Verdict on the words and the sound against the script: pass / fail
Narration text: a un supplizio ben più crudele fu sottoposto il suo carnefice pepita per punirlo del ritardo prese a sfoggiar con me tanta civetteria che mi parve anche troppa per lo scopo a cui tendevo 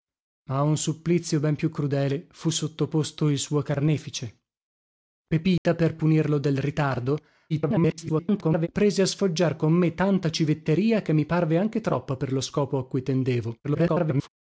fail